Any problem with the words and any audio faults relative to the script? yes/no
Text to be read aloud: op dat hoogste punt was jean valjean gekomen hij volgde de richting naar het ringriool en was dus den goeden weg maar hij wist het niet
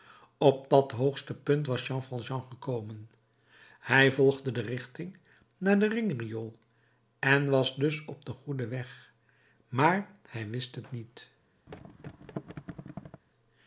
yes